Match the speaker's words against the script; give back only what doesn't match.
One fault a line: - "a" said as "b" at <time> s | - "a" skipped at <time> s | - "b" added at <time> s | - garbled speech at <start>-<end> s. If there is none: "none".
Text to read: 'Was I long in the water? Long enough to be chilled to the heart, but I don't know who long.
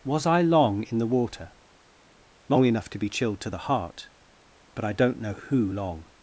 none